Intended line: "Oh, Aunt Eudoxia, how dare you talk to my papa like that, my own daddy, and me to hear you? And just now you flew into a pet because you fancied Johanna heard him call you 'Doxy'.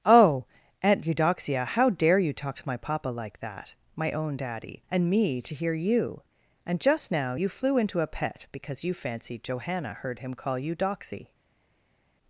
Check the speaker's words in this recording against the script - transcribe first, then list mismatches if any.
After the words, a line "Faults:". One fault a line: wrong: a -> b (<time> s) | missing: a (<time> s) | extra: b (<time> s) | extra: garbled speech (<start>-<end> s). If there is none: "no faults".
"Oh, Aunt Eudoxia, how dare you talk to my papa like that, my own daddy, and me to hear you? And just now you flew into a pet because you fancied Johanna heard him call you 'Doxy'.
Faults:
no faults